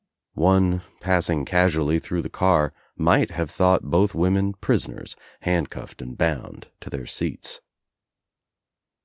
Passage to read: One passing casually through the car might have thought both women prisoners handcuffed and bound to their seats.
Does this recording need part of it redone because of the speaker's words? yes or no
no